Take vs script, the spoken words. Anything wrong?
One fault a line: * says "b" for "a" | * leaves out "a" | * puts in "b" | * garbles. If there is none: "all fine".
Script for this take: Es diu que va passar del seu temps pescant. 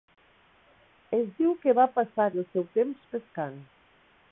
all fine